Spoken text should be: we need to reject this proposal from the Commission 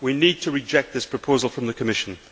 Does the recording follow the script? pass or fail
pass